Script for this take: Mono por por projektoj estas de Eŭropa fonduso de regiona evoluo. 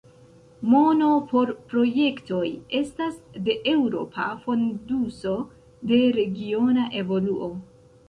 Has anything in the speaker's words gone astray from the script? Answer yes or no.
yes